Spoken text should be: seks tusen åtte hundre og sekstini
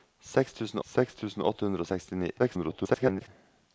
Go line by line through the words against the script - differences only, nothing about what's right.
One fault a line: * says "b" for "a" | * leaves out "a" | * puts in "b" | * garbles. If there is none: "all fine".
* puts in "seks tusen"
* garbles